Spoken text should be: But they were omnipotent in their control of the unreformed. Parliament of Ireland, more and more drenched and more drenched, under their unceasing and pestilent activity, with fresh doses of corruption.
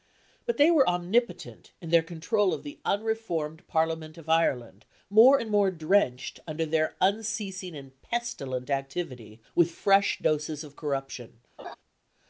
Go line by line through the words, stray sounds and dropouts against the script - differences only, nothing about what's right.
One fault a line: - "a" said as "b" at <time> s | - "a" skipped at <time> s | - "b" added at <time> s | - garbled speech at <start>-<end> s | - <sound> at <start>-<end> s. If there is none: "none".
- "and more drenched" skipped at 6.4 s
- laugh at 11.6-11.8 s